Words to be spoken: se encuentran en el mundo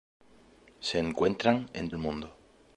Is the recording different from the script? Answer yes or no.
no